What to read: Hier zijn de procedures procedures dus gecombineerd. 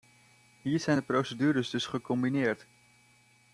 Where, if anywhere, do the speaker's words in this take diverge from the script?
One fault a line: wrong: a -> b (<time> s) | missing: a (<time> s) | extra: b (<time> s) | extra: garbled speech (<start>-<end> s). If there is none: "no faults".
missing: procedures (1.7 s)